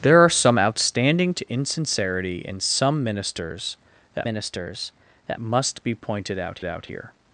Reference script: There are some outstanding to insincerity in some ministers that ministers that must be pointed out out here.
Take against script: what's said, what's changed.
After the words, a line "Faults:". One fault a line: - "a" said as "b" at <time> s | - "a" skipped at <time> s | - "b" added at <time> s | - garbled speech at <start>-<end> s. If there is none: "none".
There are some outstanding to insincerity in some ministers that ministers that must be pointed out out here.
Faults:
none